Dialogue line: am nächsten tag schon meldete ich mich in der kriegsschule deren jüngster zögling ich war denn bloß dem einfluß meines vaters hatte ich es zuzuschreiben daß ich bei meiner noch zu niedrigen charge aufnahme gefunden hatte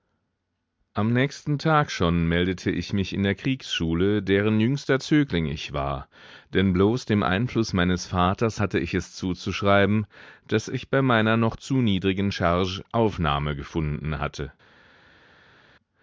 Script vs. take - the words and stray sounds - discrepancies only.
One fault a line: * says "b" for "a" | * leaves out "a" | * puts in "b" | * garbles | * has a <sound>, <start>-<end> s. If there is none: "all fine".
all fine